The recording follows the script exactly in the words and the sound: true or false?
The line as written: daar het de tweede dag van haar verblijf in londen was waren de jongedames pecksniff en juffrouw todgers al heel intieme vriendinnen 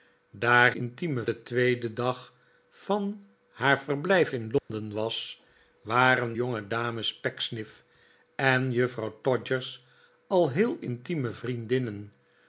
false